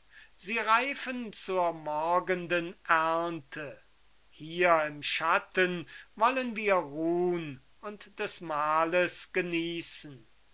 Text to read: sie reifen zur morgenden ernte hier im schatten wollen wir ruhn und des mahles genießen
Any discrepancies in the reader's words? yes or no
no